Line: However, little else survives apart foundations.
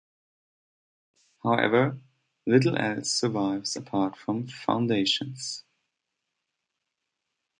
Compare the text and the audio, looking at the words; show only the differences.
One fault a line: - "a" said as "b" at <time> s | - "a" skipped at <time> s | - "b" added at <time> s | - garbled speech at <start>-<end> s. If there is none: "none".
- "from" added at 4.2 s